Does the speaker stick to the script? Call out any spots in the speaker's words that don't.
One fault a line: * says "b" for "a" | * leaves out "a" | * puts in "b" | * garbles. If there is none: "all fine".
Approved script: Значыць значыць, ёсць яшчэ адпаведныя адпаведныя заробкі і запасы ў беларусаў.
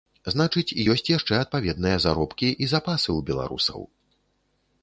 * leaves out "значыць"
* leaves out "адпаведныя"